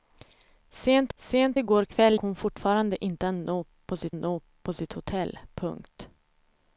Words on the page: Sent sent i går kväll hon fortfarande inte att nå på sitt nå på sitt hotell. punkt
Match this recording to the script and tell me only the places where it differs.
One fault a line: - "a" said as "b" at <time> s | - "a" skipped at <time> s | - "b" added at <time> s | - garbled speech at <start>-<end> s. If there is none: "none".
none